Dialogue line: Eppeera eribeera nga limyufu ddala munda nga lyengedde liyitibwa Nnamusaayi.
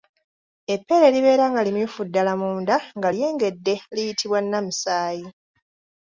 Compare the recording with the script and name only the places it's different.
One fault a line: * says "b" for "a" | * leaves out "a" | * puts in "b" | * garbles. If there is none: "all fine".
all fine